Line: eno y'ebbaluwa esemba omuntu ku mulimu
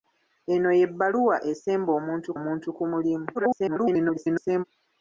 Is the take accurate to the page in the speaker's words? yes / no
no